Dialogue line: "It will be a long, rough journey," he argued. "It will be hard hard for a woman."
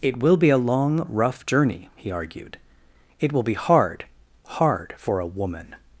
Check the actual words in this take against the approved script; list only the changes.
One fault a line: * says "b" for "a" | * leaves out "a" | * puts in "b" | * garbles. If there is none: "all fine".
all fine